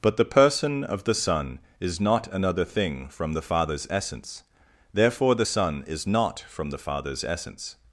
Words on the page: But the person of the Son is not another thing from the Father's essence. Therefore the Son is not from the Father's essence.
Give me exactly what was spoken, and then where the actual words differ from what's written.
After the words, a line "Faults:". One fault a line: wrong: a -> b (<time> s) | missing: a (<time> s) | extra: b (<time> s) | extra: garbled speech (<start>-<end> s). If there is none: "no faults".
But the person of the Son is not another thing from the Father's essence. Therefore the Son is not from the Father's essence.
Faults:
no faults